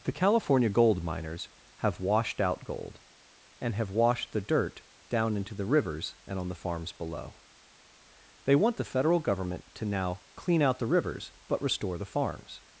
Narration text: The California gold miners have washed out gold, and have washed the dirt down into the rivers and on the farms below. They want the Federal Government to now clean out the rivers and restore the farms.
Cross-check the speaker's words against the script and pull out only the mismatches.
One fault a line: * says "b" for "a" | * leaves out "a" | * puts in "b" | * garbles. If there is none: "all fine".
* says "but" for "and"